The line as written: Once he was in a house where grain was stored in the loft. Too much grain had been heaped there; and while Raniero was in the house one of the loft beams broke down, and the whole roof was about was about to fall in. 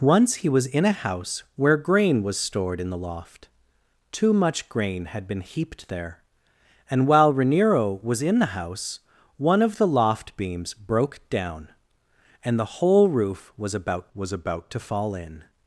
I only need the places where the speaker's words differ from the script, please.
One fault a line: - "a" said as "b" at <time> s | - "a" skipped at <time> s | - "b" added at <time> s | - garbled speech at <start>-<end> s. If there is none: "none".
none